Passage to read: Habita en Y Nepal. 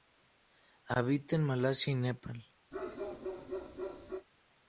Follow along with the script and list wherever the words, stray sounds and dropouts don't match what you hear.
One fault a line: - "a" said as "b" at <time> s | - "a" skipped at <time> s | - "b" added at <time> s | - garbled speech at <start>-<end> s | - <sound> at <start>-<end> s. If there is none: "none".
- "Malasia" added at 1.4 s
- bark at 2.7-4.3 s